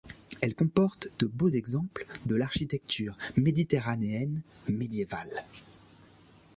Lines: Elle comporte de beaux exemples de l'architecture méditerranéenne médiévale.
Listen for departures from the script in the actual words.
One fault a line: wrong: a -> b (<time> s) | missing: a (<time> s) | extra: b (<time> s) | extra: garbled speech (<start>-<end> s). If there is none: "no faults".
no faults